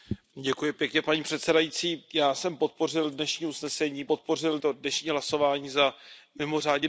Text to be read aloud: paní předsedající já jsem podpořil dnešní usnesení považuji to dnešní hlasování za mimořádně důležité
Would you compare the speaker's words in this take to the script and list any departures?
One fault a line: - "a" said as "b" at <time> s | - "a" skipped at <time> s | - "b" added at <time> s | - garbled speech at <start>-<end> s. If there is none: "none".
- "považuji" said as "podpořil" at 4.1 s